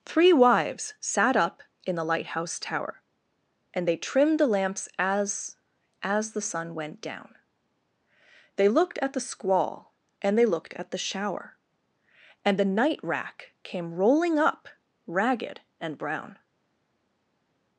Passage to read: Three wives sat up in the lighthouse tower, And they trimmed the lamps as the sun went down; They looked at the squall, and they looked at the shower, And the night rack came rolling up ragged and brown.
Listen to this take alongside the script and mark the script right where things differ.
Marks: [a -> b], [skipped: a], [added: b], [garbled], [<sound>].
Three wives sat up in the lighthouse tower, And they trimmed the lamps as [added: as] the sun went down; They looked at the squall, and they looked at the shower, And the night rack came rolling up ragged and brown.